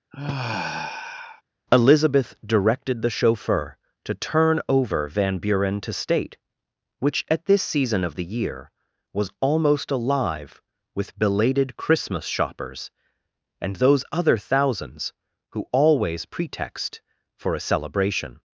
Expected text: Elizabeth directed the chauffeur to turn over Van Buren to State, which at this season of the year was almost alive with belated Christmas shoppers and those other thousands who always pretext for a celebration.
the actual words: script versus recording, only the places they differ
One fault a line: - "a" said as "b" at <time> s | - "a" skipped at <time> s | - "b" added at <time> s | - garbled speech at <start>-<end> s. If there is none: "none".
none